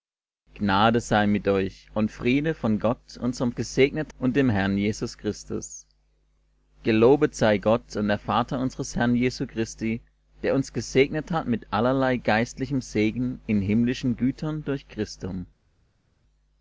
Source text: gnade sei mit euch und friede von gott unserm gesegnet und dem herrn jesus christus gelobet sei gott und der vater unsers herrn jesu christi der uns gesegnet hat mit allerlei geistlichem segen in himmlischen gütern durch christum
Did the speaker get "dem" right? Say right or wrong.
right